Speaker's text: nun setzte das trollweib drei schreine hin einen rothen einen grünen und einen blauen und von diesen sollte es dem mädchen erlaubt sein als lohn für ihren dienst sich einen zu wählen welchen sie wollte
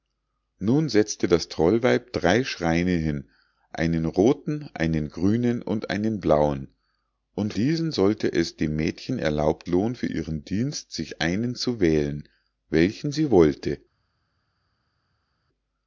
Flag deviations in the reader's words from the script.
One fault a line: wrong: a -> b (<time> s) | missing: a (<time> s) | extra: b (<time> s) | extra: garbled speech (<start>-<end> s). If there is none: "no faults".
missing: von (7.5 s)
missing: sein als (9.7 s)